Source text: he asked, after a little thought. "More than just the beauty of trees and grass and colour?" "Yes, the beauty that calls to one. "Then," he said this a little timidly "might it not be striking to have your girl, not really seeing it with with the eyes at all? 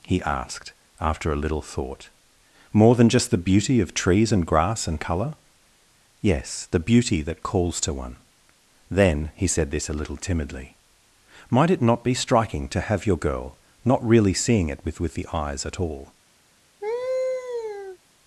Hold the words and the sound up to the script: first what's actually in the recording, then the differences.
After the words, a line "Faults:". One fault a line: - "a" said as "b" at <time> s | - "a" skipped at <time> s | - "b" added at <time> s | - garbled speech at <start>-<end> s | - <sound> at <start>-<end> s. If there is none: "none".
he asked, after a little thought. "More than just the beauty of trees and grass and colour?" "Yes, the beauty that calls to one. "Then," he said this a little timidly "might it not be striking to have your girl, not really seeing it with with the eyes at all?
Faults:
- laugh at 16.8-18.0 s